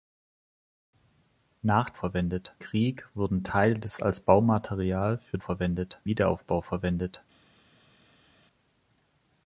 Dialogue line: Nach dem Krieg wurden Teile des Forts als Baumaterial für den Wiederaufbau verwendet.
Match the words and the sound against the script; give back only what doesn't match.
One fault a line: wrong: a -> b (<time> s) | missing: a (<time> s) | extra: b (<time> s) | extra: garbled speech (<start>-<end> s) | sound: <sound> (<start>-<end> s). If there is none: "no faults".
wrong: dem -> verwendet (1.9 s)
missing: Forts (4.0 s)
wrong: den -> verwendet (5.4 s)